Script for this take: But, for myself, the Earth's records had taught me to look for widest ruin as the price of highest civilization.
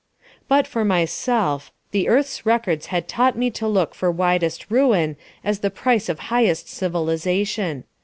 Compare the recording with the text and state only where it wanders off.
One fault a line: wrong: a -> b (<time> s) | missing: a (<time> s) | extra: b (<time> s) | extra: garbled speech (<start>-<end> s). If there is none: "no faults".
no faults